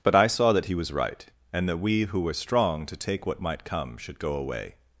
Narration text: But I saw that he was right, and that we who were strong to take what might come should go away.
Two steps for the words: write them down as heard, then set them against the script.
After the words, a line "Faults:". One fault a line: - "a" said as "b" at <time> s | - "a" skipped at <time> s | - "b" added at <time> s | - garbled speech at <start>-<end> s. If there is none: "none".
But I saw that he was right, and that we who were strong to take what might come should go away.
Faults:
none